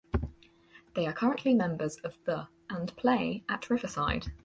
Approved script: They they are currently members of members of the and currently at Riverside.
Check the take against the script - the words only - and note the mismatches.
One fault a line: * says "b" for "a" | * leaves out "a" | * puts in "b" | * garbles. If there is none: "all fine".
* leaves out "they"
* leaves out "members of"
* says "play" for "currently"